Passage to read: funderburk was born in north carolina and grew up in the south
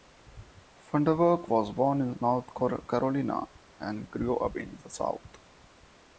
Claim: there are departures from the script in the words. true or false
false